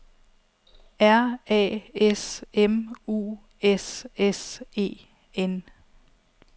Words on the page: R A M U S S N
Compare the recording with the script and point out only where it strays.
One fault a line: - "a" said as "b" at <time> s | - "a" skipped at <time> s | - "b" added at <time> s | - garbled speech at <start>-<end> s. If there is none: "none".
- "S" added at 1.9 s
- "E" added at 4.7 s